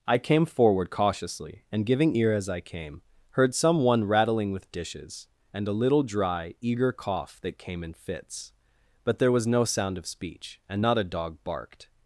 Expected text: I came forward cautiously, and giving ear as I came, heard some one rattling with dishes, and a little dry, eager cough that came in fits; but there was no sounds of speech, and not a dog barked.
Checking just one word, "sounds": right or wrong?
wrong